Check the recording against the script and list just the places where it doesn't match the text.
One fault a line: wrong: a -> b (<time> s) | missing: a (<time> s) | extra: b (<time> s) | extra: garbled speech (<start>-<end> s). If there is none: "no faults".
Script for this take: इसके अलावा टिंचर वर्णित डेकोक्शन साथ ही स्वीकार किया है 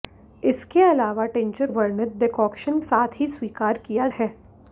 no faults